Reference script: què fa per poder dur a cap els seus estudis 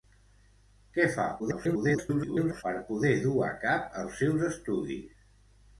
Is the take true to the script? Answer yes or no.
no